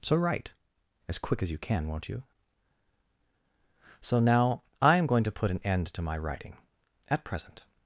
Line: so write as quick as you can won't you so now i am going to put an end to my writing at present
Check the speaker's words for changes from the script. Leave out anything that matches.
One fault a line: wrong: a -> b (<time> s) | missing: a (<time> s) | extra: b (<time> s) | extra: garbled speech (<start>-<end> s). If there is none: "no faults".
no faults